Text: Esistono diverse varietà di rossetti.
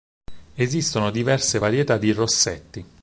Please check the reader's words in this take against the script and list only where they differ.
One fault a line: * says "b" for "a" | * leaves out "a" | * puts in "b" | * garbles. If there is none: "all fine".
all fine